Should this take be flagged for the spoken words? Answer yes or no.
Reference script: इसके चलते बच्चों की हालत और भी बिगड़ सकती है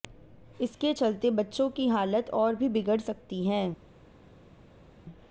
no